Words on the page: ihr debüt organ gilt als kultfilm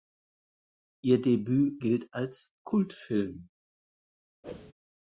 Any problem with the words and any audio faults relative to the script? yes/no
yes